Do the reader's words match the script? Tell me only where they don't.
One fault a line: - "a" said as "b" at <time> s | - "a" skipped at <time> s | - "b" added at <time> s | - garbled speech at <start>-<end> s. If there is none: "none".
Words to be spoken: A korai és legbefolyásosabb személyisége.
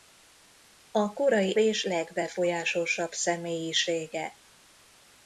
none